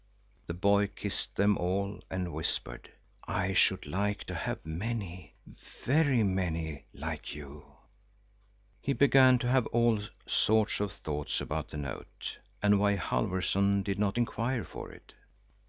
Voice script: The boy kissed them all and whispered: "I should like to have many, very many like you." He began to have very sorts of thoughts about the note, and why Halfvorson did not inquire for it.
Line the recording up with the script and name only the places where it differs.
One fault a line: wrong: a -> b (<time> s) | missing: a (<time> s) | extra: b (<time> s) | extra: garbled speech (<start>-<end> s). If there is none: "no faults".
wrong: very -> all (9.7 s)